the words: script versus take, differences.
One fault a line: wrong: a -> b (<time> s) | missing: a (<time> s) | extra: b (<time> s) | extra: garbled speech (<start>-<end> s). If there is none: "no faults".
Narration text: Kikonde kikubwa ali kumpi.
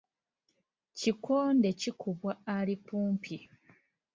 no faults